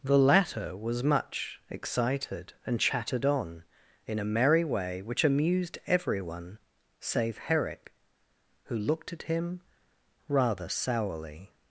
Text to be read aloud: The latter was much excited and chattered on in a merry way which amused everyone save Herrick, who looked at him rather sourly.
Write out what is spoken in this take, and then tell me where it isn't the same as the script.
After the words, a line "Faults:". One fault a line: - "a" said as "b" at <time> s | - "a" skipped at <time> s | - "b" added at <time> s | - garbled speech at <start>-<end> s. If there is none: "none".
The latter was much excited and chattered on in a merry way which amused everyone save Herrick, who looked at him rather sourly.
Faults:
none